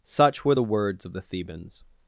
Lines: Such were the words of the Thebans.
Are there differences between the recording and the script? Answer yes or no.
no